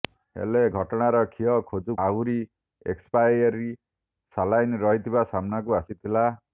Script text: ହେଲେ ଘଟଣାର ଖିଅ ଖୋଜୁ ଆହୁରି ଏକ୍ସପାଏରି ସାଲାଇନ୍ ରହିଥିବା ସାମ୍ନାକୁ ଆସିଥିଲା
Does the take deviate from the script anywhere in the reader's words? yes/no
no